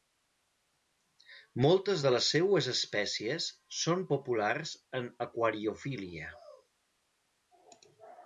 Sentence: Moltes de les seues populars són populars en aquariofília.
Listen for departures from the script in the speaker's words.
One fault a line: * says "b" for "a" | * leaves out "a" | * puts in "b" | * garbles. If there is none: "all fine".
* says "espècies" for "populars"